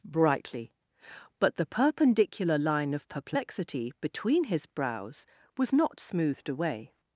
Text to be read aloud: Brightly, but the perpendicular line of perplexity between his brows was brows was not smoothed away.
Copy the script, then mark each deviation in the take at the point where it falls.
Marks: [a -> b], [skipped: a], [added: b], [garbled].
Brightly, but the perpendicular line of perplexity between his brows was [skipped: brows was] not smoothed away.